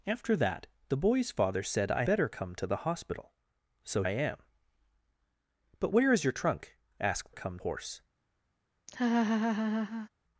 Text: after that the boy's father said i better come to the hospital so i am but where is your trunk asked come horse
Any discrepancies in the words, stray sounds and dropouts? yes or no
yes